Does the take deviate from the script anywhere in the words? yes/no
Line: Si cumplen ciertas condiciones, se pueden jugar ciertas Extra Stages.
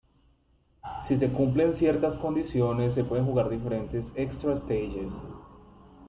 yes